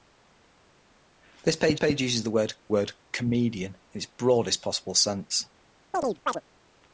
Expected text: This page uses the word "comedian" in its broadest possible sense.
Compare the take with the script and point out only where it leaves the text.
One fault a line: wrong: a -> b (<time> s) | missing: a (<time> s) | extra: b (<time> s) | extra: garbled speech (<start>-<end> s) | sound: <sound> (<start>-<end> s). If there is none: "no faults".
extra: page (1.7 s)
extra: word (2.7 s)
sound: chirp (5.9-6.4 s)